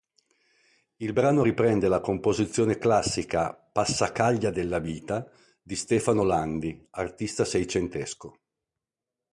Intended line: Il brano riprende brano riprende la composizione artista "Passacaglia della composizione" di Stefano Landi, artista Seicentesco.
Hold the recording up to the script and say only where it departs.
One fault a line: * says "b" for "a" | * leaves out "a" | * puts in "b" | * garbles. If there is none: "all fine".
* leaves out "brano riprende"
* says "classica" for "artista"
* says "vita" for "composizione"